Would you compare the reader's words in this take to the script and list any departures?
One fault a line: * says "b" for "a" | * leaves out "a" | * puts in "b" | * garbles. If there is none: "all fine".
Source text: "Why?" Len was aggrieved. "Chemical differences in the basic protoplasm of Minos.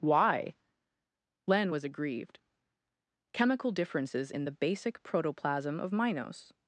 all fine